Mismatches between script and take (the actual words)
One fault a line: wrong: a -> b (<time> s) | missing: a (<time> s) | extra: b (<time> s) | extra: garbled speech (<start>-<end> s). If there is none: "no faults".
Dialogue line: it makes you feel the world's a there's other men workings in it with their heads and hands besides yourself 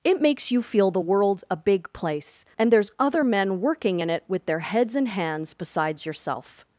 extra: big place and (1.6 s)
wrong: workings -> working (3.6 s)